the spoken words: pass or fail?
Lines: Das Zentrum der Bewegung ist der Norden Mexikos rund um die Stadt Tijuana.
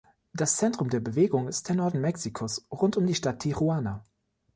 pass